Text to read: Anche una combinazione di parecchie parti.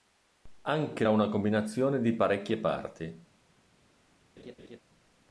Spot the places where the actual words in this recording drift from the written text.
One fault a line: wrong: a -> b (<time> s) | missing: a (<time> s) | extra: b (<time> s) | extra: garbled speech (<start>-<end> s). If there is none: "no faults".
no faults